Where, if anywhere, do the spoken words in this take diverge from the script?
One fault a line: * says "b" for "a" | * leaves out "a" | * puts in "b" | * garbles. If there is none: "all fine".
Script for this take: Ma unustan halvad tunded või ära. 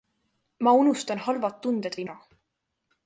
all fine